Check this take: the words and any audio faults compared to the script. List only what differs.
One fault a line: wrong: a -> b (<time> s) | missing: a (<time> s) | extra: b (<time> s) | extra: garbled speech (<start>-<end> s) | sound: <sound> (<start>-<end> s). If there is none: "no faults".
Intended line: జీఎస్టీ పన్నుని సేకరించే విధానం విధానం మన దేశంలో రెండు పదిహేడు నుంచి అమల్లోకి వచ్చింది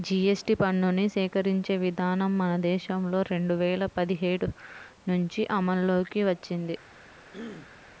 missing: విధానం (2.3 s)
extra: వేల (3.5 s)
sound: throat clearing (7.3-7.9 s)